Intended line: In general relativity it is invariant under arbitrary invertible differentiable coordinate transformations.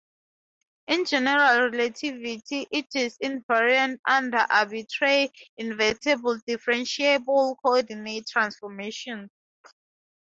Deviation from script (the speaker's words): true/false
false